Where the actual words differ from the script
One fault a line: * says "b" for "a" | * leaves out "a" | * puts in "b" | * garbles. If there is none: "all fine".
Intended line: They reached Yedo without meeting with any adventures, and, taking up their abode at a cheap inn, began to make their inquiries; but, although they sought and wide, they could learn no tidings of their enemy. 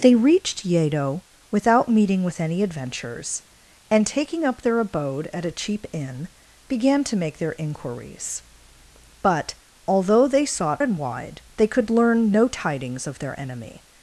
all fine